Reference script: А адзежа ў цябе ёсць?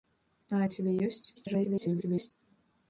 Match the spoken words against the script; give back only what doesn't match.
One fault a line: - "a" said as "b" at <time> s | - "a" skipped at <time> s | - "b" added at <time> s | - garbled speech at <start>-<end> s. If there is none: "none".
- "адзежа" skipped at 0.6 s
- garbled speech at 1.3-2.3 s